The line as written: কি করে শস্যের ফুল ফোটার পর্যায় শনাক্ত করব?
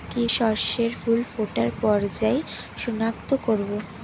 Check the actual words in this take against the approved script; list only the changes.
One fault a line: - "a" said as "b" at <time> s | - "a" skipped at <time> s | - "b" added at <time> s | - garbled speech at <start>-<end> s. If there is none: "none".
- "করে" skipped at 0.2 s